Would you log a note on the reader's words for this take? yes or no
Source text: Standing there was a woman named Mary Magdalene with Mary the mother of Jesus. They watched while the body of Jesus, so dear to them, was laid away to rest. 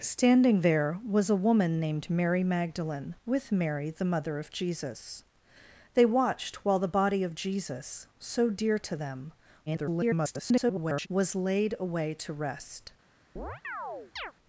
yes